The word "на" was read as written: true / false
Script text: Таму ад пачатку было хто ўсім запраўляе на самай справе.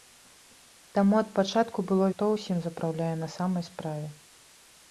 true